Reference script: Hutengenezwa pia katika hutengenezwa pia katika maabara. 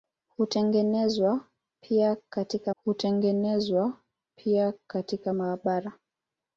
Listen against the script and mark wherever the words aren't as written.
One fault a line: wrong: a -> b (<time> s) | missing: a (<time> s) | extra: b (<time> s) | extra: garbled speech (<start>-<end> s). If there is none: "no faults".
no faults